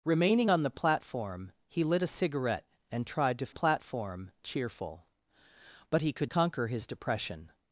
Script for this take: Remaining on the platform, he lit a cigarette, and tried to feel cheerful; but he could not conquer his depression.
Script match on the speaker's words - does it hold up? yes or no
no